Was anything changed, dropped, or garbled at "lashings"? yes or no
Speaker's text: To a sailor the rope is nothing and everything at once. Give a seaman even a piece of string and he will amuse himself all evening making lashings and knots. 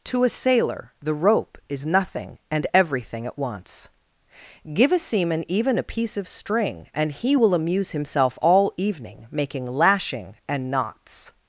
yes